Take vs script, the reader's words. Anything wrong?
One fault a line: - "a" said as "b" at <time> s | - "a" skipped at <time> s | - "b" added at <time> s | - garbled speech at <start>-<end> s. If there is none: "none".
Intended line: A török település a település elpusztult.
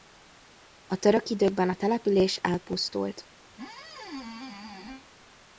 - "település" said as "időkben" at 1.3 s